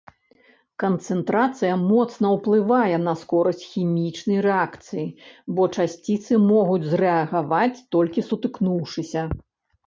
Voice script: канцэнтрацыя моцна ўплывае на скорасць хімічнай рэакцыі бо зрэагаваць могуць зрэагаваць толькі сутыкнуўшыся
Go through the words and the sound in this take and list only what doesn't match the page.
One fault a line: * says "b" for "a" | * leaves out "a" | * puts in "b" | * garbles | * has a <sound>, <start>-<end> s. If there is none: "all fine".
* says "часціцы" for "зрэагаваць"